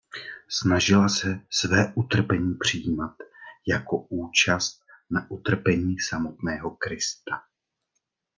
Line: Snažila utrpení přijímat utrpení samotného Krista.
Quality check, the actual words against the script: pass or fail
fail